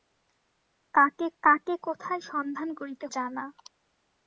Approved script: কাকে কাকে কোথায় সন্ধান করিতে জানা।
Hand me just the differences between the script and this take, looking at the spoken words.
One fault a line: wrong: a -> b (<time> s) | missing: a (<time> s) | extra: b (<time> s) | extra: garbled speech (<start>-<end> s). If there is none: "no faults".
no faults